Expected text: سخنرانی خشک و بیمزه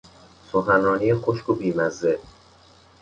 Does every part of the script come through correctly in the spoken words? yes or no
yes